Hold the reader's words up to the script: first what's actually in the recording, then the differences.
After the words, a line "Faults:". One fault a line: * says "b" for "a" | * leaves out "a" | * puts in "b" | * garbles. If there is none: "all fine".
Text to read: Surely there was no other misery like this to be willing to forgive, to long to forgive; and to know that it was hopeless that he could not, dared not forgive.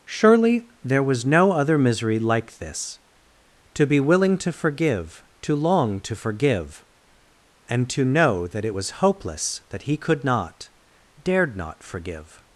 Surely there was no other misery like this to be willing to forgive, to long to forgive; and to know that it was hopeless that he could not, dared not forgive.
Faults:
all fine